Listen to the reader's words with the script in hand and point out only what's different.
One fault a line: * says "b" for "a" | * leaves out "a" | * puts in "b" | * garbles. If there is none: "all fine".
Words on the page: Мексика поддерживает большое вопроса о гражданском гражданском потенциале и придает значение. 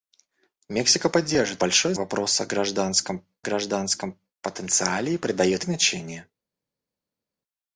all fine